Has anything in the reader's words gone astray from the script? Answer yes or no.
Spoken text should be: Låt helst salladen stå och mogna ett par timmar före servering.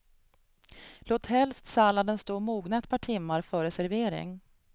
no